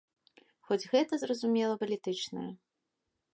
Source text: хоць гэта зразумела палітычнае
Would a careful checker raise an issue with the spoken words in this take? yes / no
no